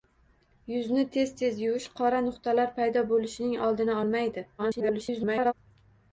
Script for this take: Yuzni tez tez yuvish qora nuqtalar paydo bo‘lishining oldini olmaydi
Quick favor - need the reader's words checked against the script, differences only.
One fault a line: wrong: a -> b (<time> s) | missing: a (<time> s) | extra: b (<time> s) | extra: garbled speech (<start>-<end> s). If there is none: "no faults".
extra: garbled speech (4.6-5.5 s)